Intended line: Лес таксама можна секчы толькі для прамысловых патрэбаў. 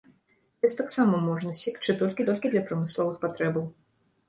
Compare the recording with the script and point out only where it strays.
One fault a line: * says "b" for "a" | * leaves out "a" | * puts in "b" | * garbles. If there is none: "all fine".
* puts in "толькі"